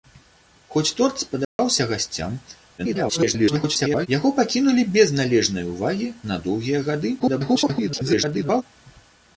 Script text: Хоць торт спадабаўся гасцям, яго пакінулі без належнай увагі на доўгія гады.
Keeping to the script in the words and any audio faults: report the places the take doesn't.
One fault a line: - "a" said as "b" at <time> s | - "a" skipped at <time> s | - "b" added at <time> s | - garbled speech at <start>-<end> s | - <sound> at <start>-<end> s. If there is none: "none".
- dropout at 1.4-1.6 s
- garbled speech at 2.8-4.1 s
- garbled speech at 7.2-8.6 s